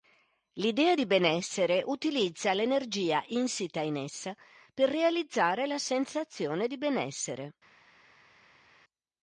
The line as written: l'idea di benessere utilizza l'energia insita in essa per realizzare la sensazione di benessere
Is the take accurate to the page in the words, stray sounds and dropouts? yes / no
yes